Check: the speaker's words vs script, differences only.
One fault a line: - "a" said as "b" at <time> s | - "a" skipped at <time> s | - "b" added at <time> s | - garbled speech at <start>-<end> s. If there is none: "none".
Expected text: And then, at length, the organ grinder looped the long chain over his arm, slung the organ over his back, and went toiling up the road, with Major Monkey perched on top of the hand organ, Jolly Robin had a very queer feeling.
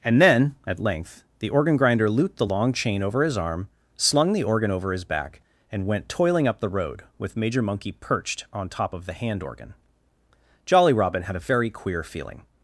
none